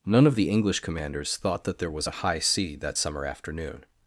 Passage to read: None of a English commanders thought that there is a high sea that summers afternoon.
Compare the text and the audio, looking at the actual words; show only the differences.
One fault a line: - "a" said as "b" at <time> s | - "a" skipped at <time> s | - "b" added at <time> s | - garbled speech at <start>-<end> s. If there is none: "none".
- "a" said as "the" at 0.3 s
- "is" said as "was" at 1.9 s
- "summers" said as "summer" at 3.0 s